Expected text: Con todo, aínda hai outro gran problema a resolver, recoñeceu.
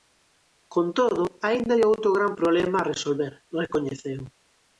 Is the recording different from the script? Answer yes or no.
no